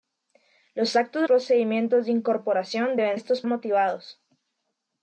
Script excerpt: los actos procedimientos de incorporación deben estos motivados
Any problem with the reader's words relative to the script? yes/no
no